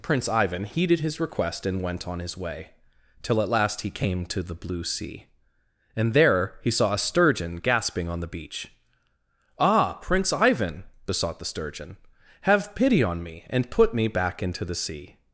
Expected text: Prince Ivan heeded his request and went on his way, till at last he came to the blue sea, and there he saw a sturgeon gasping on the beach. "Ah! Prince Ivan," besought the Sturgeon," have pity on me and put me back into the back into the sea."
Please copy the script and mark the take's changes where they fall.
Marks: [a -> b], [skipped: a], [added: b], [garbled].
Prince Ivan heeded his request and went on his way, till at last he came to the blue sea, and there he saw a sturgeon gasping on the beach. "Ah! Prince Ivan," besought the Sturgeon," have pity on me and put me back into the [skipped: back into the] sea."